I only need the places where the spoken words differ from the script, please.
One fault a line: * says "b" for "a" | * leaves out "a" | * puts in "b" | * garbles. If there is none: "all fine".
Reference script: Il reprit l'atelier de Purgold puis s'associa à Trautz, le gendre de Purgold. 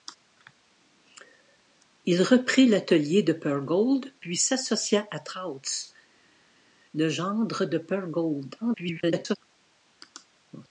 * garbles